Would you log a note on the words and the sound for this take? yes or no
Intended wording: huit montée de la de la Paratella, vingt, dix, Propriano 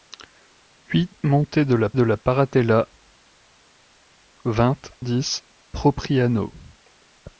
no